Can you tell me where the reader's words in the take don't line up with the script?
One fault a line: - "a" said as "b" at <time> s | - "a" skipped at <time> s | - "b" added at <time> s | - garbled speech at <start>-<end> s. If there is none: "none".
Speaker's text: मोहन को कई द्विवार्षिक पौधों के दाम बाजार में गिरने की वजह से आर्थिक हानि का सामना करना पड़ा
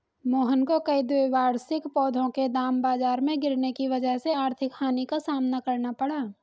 none